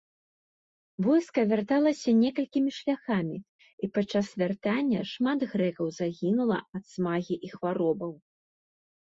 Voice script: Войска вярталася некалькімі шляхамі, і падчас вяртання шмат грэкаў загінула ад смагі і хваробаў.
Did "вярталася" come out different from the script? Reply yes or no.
no